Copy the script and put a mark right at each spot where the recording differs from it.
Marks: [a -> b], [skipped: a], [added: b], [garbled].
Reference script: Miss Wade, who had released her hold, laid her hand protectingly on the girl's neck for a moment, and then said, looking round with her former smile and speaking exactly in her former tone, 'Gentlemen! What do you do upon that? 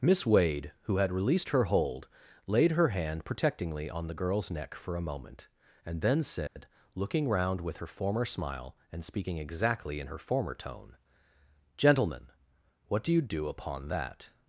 Miss Wade, who had released her hold, laid her hand protectingly on the girl's neck for a moment, and then said, looking round with her former smile and speaking exactly in her former tone, 'Gentlemen! What do you do upon that?